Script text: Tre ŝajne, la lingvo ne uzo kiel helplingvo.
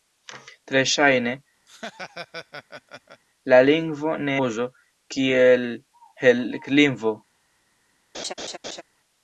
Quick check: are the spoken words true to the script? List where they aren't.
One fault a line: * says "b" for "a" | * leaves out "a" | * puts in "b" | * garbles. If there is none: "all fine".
all fine